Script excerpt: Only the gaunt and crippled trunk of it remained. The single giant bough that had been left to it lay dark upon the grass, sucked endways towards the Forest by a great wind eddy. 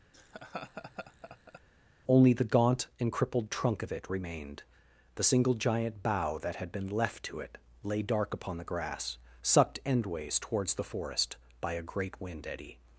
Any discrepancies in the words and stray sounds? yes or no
yes